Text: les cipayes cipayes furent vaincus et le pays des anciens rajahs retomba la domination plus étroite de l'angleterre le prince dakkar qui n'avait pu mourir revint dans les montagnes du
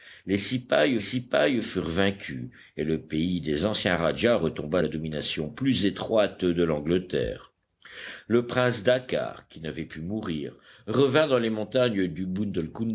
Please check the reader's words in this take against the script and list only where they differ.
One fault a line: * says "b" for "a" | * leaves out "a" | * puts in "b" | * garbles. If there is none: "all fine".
all fine